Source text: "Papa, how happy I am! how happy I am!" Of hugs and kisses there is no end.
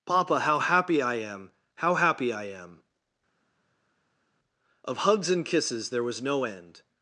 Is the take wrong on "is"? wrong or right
wrong